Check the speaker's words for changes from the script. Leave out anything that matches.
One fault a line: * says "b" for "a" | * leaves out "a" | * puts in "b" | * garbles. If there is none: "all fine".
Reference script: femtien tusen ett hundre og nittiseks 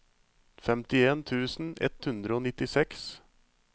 all fine